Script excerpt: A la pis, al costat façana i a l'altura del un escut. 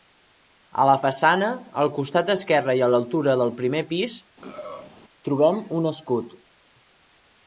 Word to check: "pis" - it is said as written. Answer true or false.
false